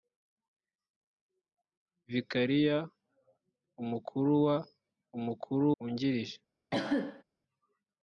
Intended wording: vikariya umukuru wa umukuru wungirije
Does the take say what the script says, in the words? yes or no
yes